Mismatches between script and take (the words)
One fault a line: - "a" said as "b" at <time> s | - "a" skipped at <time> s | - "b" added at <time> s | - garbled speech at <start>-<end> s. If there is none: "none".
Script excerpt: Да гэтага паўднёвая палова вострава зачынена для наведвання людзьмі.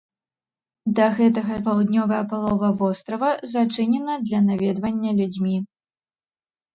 none